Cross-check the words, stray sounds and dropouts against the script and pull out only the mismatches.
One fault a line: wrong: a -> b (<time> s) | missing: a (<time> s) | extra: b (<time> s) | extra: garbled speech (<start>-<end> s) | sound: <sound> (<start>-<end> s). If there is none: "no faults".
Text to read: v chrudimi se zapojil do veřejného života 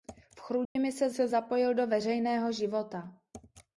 sound: dropout (0.6-0.8 s)
extra: se (1.1 s)